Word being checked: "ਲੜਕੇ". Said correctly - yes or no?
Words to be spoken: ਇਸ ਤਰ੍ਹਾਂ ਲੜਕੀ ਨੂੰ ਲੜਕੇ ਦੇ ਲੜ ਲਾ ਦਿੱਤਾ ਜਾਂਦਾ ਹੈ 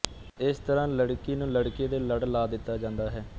yes